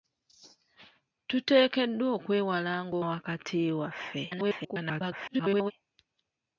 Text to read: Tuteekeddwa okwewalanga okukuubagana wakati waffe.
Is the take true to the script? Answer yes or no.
no